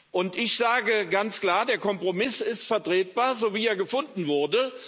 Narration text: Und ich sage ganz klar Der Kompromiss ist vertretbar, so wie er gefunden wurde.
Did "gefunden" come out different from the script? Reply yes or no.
no